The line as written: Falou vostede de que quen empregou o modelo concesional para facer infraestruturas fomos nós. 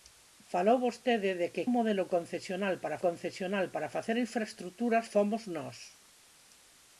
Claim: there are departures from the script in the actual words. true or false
true